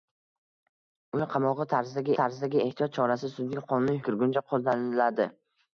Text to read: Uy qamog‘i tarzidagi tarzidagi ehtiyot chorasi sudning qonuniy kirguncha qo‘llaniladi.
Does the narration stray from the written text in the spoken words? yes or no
no